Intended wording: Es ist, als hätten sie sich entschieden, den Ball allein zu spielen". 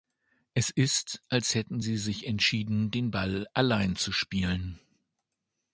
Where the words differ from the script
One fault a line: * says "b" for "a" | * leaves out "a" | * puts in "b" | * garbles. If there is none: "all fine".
all fine